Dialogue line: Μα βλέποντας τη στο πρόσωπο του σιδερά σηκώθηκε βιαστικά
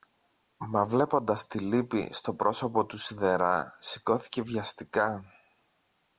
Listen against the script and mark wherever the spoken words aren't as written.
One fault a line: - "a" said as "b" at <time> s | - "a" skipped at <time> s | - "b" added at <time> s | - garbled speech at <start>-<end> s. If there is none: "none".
- "λύπη" added at 1.6 s